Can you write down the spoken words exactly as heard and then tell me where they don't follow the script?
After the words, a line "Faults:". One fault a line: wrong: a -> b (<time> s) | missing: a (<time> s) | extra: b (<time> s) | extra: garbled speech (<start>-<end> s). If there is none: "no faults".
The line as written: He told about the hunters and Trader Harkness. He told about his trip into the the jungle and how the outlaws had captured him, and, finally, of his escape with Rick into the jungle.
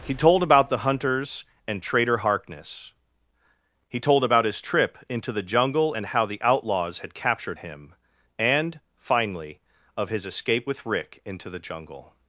He told about the hunters and Trader Harkness. He told about his trip into the jungle and how the outlaws had captured him, and, finally, of his escape with Rick into the jungle.
Faults:
missing: the (5.4 s)